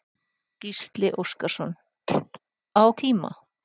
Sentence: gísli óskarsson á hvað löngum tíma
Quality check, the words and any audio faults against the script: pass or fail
fail